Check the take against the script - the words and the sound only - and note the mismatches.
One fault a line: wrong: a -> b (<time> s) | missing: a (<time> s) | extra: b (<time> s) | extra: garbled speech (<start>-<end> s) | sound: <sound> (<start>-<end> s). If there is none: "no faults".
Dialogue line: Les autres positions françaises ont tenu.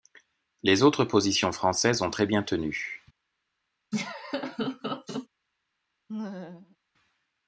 extra: très bien (2.1 s)
sound: laugh (3.9-5.3 s)
sound: laugh (6.1-6.8 s)